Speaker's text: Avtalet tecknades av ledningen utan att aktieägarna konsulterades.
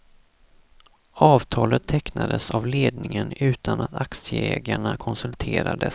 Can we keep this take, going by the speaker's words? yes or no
yes